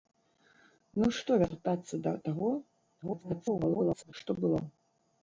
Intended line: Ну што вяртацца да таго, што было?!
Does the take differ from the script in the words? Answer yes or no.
yes